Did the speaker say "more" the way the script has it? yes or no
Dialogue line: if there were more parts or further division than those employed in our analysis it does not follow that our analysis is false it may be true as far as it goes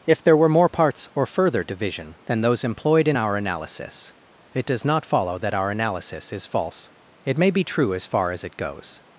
yes